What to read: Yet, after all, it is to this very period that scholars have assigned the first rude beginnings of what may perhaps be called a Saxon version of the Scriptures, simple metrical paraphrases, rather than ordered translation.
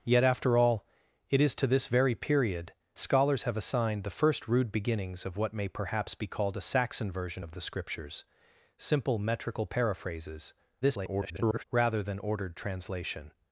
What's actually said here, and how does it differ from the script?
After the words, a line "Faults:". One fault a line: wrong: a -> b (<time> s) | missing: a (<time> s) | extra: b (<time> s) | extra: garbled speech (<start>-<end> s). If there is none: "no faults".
Yet, after all, it is to this very period scholars have assigned the first rude beginnings of what may perhaps be called a Saxon version of the Scriptures, simple metrical paraphrases, [garbled] rather than ordered translation.
Faults:
missing: that (2.7 s)
extra: garbled speech (10.8-11.6 s)